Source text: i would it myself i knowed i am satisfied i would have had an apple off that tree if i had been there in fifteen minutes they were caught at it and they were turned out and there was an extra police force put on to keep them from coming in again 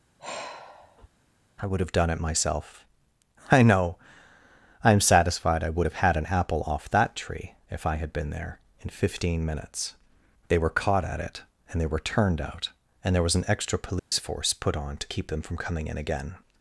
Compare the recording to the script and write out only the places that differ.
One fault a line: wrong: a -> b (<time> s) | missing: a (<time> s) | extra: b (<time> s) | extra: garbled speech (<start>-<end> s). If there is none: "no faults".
extra: have done (1.8 s)
wrong: knowed -> know (3.6 s)